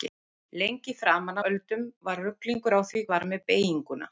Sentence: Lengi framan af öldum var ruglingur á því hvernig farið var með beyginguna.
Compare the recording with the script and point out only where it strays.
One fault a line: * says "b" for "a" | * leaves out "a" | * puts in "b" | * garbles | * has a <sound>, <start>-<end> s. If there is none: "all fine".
* leaves out "af"
* leaves out "hvernig farið"